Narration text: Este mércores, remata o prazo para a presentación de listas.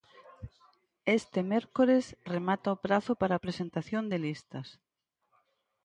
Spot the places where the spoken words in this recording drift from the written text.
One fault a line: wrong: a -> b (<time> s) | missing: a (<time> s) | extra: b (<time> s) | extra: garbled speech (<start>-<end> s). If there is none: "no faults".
no faults